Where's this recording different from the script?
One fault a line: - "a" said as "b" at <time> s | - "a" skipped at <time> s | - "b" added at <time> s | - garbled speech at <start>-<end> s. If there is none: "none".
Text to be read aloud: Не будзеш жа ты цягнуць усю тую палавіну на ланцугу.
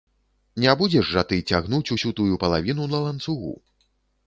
none